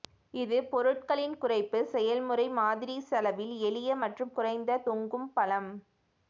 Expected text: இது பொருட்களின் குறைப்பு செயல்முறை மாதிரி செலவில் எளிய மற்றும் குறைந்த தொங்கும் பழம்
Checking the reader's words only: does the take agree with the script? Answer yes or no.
yes